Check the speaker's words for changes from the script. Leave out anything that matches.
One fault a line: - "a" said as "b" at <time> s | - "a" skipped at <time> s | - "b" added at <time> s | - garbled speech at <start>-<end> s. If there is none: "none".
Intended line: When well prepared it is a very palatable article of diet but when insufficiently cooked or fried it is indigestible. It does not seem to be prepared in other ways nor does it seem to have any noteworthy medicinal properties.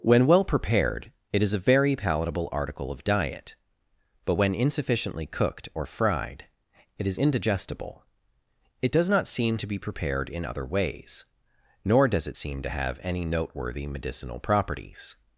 none